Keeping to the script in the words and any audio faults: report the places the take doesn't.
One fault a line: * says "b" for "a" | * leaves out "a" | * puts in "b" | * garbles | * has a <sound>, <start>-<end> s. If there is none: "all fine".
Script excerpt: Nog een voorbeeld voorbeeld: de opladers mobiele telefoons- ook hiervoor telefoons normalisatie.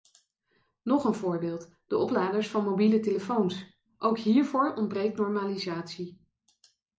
* leaves out "voorbeeld"
* puts in "van"
* says "ontbreekt" for "telefoons"